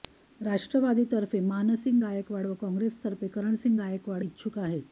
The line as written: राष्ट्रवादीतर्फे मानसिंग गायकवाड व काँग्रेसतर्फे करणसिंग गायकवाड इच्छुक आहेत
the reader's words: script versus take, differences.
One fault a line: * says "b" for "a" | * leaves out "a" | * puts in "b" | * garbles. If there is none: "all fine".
all fine